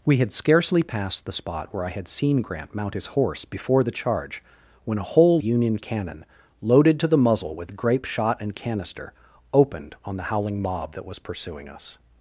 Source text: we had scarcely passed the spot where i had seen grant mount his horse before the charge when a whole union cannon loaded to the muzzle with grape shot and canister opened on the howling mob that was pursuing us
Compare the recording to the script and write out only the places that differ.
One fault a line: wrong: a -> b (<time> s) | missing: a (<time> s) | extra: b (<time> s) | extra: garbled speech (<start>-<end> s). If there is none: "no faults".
no faults